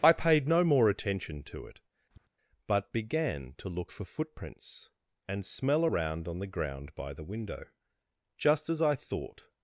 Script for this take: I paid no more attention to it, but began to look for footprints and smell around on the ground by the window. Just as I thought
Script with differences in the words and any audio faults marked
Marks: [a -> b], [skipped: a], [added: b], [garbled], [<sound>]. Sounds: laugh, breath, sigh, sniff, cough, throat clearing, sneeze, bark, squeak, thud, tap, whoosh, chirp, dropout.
I paid no more attention to it, [tap] but began to look for footprints and smell around on the ground by the window. Just as I thought